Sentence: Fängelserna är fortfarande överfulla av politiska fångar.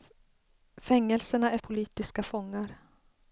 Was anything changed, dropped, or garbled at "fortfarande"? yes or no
yes